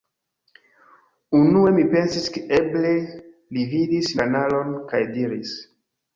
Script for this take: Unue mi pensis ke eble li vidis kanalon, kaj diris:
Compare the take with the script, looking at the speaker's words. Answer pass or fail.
pass